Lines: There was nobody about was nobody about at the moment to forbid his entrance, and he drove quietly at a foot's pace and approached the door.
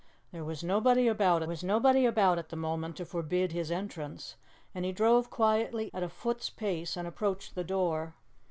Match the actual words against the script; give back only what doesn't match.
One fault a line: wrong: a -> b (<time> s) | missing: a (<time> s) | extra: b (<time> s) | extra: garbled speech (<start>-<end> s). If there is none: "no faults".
no faults